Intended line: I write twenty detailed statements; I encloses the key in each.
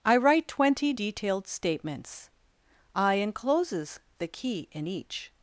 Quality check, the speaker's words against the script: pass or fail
pass